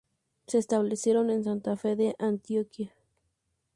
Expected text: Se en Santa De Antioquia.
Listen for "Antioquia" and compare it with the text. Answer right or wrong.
right